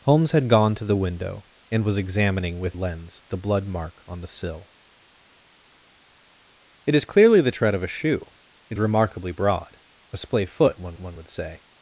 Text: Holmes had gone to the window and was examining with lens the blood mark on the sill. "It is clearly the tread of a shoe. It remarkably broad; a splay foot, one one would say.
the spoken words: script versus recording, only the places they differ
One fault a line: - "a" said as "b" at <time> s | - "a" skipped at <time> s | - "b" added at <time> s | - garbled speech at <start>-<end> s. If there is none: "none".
none